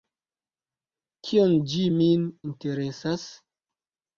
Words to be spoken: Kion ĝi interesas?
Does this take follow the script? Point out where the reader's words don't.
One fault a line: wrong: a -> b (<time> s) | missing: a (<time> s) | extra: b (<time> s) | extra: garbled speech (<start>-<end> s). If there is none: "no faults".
extra: min (2.0 s)